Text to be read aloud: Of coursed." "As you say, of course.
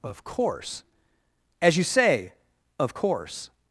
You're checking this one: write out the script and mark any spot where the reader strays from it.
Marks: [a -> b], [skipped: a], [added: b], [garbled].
Of [coursed." -> course] "As you say, of course.